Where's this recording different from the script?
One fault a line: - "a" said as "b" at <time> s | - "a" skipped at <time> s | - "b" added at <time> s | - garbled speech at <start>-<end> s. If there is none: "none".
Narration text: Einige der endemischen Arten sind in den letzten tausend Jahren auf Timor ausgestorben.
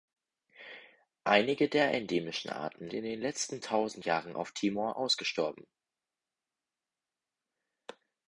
- "sind" skipped at 2.9 s